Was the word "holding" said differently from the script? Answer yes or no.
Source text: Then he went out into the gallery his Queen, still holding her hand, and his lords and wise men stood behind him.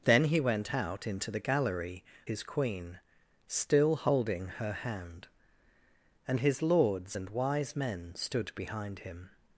no